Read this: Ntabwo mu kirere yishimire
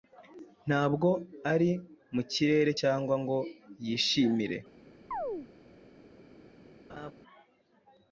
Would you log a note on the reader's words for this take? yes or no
yes